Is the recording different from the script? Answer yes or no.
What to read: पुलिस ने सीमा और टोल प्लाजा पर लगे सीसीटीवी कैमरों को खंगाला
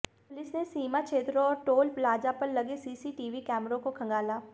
yes